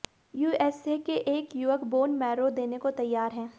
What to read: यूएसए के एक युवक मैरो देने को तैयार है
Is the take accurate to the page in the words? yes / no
no